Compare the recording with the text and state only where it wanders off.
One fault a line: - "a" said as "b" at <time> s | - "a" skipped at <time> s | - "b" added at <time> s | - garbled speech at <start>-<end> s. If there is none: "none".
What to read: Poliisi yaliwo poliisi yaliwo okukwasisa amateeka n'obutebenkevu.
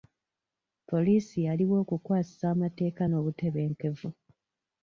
- "poliisi yaliwo" skipped at 1.8 s